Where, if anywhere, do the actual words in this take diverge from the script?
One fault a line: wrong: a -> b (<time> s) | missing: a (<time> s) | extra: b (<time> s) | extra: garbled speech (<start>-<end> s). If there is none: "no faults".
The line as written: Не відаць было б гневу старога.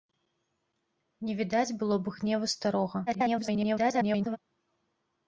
extra: garbled speech (3.1-4.4 s)